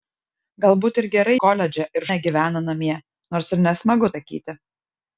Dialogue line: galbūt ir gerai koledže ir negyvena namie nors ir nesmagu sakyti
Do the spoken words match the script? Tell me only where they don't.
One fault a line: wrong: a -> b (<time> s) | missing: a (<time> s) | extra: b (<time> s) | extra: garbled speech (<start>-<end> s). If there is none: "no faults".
no faults